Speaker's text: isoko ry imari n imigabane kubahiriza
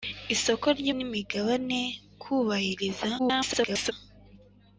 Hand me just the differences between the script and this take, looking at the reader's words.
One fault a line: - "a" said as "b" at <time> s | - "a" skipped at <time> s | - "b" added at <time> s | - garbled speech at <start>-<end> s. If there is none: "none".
- "imari" skipped at 0.9 s
- garbled speech at 3.2-3.9 s